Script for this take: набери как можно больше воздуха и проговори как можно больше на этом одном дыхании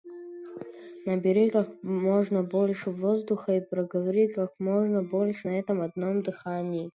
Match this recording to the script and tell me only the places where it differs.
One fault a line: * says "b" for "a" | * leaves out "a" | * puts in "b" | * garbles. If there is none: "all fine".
all fine